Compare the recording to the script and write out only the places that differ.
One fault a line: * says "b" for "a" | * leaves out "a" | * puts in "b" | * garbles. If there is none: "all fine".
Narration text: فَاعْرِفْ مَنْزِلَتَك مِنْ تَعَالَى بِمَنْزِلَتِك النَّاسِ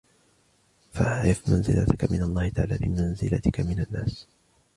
* puts in "اللَّهِ"
* puts in "مِنْ"